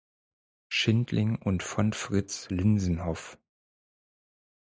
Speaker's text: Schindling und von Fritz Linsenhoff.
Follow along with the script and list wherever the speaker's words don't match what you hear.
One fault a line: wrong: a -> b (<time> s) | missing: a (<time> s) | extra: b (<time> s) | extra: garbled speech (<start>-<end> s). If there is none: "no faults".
no faults